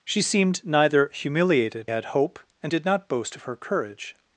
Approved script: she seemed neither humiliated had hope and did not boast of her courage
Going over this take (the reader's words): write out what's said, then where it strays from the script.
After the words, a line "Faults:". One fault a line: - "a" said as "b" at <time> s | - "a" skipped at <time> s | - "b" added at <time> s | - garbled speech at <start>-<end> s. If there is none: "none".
she seemed neither humiliated had hope and did not boast of her courage
Faults:
none